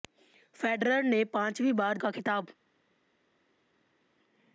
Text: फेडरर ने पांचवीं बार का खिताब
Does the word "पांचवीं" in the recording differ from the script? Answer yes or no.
no